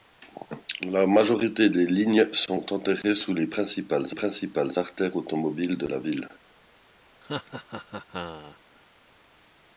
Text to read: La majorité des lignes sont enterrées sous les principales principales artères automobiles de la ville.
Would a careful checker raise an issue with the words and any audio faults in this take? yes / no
yes